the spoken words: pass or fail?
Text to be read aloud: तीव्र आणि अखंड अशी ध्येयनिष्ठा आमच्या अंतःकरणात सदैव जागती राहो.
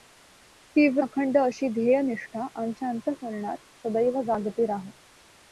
fail